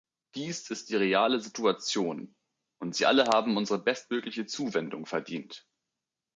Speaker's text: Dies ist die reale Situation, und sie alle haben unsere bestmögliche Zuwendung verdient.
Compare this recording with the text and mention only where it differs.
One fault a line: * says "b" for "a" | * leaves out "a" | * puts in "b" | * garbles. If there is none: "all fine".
all fine